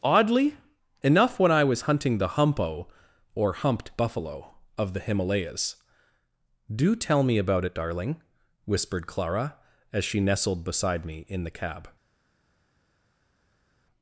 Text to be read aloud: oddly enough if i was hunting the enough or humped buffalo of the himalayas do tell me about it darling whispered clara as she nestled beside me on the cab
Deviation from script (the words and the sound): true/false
true